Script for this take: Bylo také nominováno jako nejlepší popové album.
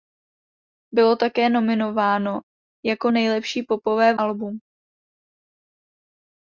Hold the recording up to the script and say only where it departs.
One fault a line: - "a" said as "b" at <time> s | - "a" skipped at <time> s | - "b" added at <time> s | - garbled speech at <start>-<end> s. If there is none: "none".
none